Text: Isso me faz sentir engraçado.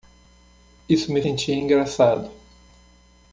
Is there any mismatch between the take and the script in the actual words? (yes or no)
yes